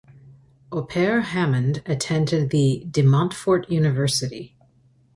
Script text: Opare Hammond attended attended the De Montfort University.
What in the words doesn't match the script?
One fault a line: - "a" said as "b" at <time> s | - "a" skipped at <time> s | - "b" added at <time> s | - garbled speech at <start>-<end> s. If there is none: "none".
- "attended" skipped at 2.5 s